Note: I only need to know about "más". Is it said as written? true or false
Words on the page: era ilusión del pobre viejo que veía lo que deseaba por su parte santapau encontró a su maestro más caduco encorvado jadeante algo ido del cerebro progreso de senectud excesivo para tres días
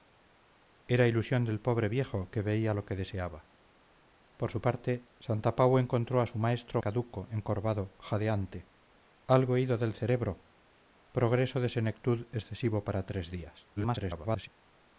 false